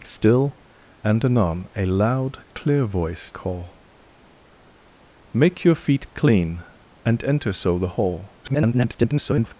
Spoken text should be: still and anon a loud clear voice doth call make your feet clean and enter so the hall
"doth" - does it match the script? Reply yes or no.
no